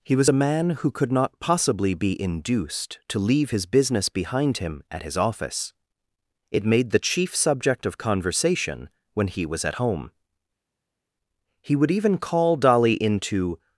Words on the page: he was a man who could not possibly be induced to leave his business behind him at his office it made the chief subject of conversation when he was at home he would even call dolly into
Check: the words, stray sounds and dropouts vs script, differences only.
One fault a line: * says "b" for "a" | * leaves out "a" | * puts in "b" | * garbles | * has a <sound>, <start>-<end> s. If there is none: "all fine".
all fine